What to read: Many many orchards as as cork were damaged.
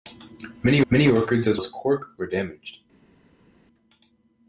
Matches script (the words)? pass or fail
pass